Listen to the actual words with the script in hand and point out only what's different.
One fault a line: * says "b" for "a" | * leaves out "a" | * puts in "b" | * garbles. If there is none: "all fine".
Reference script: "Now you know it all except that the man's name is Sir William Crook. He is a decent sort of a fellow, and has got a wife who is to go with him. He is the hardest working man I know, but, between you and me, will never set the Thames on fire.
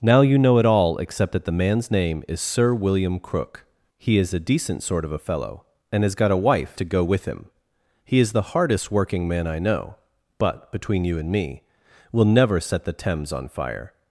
* leaves out "who is"